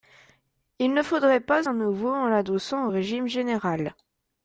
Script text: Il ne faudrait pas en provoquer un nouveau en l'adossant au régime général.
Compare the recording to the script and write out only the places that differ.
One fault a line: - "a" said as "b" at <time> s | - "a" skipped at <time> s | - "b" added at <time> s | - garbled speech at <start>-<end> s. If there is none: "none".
- "en provoquer" skipped at 1.7 s